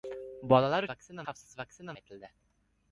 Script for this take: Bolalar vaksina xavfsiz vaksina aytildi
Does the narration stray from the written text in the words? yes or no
no